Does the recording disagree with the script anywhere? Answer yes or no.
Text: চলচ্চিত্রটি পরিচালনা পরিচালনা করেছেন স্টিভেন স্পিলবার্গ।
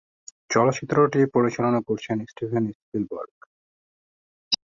yes